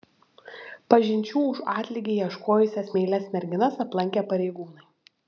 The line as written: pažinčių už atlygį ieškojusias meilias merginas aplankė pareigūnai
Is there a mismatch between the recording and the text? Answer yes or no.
no